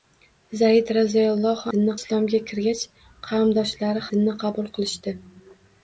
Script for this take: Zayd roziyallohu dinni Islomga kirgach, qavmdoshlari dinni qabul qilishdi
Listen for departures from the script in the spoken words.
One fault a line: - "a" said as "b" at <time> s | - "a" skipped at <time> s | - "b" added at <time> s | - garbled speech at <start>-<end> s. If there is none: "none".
none